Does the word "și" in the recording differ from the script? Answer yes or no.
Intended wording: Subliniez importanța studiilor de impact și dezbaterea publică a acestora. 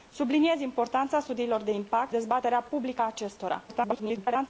yes